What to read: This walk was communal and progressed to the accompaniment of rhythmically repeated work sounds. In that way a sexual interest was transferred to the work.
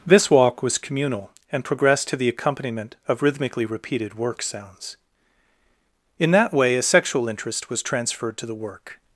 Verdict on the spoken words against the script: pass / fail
pass